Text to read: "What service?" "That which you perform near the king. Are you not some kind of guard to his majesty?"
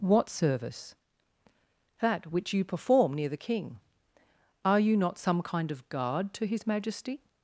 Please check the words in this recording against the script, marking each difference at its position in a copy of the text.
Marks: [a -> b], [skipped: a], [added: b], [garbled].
"What service?" "That which you perform near the king. Are you not some kind of guard to his majesty?"